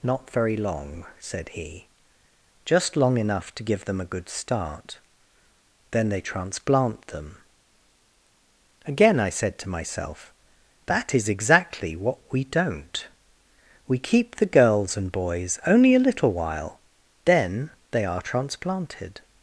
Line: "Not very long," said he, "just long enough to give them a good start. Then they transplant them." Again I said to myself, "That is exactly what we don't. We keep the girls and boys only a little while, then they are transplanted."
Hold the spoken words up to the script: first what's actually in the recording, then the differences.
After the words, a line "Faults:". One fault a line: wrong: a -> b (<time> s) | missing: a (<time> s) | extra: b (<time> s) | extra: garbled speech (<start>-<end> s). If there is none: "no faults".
"Not very long," said he, "just long enough to give them a good start. Then they transplant them." Again I said to myself, "That is exactly what we don't. We keep the girls and boys only a little while, then they are transplanted."
Faults:
no faults